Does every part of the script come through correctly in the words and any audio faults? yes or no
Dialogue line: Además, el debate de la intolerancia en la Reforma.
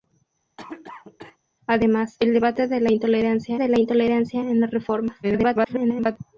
no